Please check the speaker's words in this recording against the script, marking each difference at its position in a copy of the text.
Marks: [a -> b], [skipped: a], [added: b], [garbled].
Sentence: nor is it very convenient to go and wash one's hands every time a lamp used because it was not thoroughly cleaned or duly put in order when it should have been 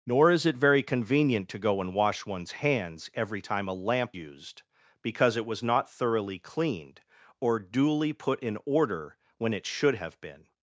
nor is it very convenient to go and wash one's hands every time a lamp used because it was not thoroughly cleaned or duly put in order when it should have been